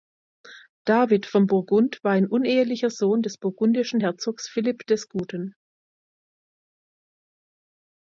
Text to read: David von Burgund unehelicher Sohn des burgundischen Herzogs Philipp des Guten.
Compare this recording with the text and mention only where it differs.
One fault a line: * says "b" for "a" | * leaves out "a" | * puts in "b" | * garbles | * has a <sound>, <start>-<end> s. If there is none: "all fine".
* puts in "war ein"